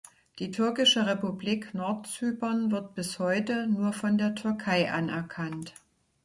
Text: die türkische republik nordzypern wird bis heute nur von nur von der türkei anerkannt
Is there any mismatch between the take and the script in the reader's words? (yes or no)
yes